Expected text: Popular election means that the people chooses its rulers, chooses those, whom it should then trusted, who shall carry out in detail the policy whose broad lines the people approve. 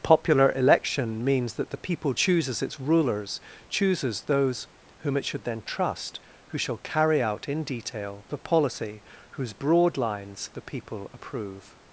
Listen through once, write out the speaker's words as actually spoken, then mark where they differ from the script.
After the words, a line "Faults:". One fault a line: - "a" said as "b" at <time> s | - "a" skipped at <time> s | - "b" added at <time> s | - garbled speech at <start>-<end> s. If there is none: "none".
Popular election means that the people chooses its rulers, chooses those, whom it should then trust, who shall carry out in detail the policy whose broad lines the people approve.
Faults:
- "trusted" said as "trust" at 5.6 s